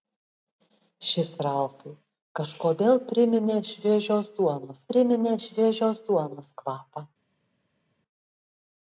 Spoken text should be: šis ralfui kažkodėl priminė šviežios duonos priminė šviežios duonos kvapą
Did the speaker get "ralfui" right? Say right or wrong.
right